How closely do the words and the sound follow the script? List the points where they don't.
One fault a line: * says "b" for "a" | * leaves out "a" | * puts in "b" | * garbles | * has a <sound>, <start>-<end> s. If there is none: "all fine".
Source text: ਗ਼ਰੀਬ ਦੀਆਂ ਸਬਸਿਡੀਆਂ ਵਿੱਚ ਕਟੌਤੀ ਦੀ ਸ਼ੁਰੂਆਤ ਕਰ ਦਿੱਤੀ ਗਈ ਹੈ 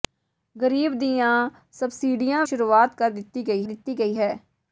* says "ਸ਼ੁਰੂਆਤ ਕਰ ਦਿੱਤੀ ਗਈ" for "ਵਿੱਚ ਕਟੌਤੀ ਦੀ ਸ਼ੁਰੂਆਤ ਕਰ"